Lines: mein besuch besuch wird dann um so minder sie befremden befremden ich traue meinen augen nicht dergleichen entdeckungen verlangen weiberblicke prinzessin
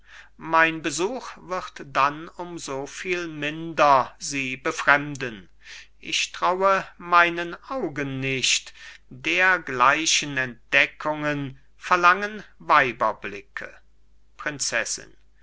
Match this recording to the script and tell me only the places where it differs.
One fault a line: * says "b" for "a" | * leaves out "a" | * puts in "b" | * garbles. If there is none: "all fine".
* leaves out "besuch"
* puts in "viel"
* leaves out "befremden"